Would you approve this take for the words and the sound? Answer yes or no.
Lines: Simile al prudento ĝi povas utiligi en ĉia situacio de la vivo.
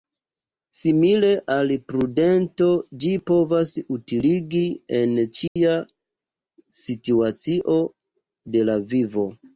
no